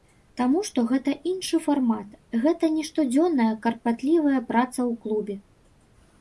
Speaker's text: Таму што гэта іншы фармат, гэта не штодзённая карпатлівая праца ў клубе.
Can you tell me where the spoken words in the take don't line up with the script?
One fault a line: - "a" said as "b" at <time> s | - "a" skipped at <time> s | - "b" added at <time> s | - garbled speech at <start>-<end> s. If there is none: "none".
none